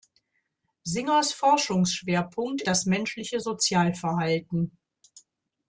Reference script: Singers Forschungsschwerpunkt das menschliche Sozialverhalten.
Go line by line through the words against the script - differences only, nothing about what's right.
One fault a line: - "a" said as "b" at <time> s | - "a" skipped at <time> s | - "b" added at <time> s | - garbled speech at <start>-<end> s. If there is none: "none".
none